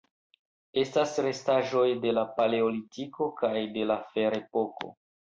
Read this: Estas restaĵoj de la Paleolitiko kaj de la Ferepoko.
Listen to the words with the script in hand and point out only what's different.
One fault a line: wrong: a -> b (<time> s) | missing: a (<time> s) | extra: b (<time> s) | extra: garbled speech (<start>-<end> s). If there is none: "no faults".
no faults